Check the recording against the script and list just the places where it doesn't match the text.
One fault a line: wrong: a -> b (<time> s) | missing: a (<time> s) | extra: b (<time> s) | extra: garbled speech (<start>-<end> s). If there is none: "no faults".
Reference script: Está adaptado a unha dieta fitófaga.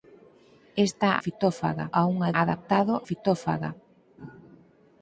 wrong: adaptado -> fitófaga (1.2 s)
wrong: dieta -> adaptado (2.4 s)